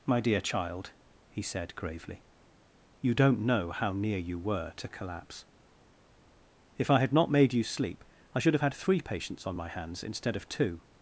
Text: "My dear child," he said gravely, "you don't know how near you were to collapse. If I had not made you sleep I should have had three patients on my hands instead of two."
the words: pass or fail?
pass